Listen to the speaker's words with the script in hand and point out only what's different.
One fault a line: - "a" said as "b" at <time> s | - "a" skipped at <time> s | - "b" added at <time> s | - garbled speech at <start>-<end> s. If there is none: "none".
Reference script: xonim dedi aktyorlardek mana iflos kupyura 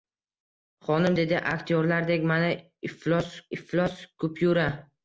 - "iflos" added at 3.6 s